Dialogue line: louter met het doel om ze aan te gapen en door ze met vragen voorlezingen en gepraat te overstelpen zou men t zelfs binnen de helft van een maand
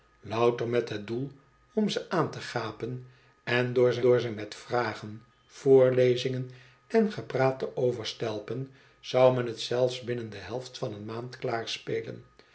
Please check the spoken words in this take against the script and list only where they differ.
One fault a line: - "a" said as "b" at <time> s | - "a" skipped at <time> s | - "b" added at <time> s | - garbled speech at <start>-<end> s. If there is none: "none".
- "door ze" added at 4.0 s